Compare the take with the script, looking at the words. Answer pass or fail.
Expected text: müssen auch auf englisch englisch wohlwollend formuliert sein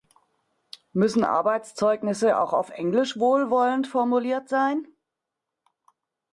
fail